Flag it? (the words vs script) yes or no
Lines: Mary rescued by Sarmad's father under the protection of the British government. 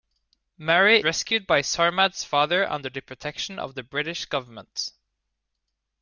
no